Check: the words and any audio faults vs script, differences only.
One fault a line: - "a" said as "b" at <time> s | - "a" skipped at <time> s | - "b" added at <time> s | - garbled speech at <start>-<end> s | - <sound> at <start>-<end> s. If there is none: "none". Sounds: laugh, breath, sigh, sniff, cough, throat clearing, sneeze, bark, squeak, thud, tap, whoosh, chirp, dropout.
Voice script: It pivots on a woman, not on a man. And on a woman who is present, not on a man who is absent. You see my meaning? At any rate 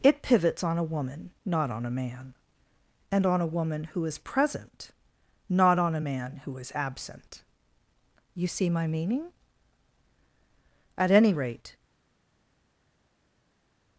none